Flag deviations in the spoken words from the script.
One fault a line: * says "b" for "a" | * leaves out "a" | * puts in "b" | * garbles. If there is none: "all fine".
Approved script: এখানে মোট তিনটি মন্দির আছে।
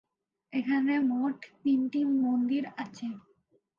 all fine